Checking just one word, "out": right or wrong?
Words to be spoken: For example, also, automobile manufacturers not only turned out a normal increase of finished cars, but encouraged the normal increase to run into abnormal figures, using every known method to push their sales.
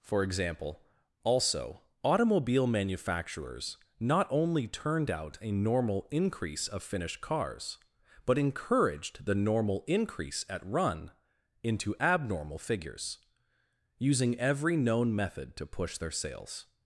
right